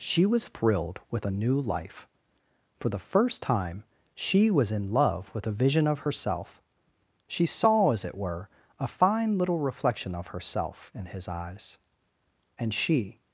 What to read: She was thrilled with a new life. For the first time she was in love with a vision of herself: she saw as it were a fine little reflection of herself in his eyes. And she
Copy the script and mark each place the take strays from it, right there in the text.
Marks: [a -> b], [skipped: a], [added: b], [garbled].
She was thrilled with a new life. For the first time she was in love with a vision of herself: she saw as it were a fine little reflection of herself in his eyes. And she